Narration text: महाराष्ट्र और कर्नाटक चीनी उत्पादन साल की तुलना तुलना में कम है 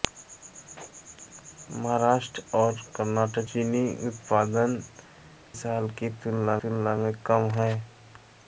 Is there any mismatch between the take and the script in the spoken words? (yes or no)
no